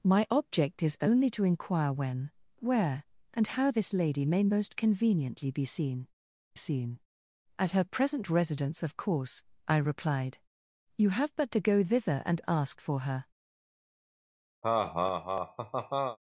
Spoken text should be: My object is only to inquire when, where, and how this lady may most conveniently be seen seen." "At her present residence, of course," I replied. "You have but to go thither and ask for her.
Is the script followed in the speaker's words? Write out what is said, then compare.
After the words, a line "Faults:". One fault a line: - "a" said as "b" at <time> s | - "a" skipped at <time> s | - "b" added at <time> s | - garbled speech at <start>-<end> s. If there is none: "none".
My object is only to inquire when, where, and how this lady may most conveniently be seen seen." "At her present residence, of course," I replied. "You have but to go thither and ask for her.
Faults:
none